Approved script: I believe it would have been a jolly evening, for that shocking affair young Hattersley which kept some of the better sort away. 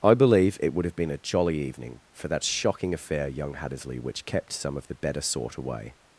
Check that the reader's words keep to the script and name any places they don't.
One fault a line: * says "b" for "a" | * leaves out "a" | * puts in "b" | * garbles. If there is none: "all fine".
all fine